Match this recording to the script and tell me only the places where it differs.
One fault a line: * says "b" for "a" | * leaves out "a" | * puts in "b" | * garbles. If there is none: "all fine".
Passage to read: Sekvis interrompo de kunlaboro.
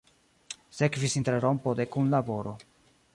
all fine